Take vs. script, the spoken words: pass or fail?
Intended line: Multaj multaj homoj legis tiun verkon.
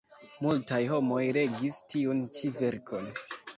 fail